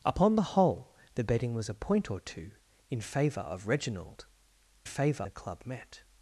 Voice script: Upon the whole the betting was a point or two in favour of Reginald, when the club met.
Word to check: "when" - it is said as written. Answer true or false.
false